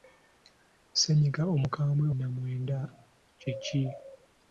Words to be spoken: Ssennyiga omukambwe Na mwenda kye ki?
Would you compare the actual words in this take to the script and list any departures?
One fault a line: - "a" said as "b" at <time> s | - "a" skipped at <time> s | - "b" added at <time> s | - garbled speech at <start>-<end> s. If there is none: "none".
none